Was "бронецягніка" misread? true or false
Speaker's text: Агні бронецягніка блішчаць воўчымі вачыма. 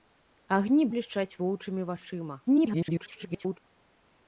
true